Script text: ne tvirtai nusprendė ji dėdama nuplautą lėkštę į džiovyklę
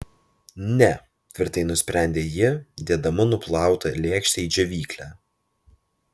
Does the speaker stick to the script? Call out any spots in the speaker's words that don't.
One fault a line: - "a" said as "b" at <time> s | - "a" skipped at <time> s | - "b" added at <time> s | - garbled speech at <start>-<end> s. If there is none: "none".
none